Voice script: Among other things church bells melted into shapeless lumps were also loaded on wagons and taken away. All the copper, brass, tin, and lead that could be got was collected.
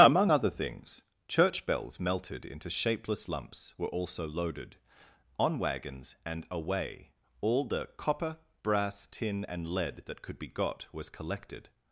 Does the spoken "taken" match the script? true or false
false